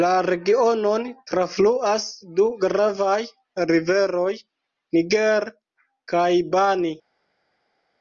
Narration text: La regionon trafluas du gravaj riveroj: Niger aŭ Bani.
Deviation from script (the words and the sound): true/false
true